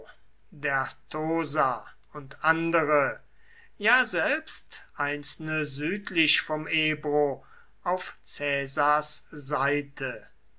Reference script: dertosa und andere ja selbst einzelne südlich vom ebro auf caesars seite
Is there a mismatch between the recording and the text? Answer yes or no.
no